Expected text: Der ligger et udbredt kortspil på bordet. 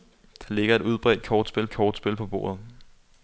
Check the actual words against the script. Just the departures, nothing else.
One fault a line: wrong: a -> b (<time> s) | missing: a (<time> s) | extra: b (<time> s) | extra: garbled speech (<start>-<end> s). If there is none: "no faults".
extra: kortspil (1.7 s)